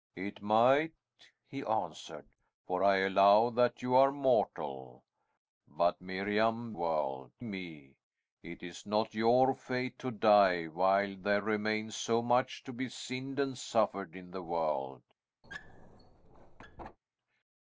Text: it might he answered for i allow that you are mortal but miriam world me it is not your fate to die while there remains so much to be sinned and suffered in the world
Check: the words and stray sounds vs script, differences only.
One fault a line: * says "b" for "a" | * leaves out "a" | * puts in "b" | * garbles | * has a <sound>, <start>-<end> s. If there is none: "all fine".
* has a squeak, 15.4-17.0 s